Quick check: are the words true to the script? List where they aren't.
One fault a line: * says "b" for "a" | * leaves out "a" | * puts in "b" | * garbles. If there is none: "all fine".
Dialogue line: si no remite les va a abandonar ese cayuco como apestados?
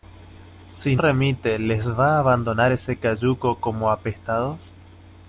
* leaves out "no"